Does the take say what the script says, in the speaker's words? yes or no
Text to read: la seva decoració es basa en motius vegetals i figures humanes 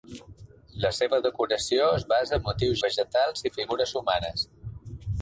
yes